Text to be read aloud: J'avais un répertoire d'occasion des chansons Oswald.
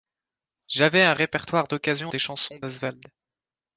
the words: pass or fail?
pass